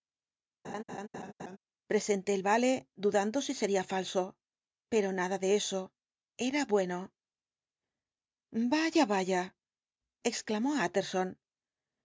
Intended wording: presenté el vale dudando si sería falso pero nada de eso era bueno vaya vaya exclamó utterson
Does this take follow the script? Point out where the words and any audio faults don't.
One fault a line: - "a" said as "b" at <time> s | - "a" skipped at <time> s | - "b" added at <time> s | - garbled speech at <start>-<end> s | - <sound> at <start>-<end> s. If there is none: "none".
- laugh at 0.6-1.6 s